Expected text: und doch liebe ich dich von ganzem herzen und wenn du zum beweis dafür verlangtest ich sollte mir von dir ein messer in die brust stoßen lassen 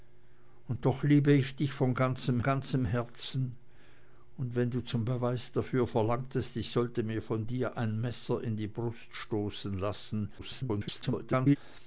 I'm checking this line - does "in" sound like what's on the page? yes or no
yes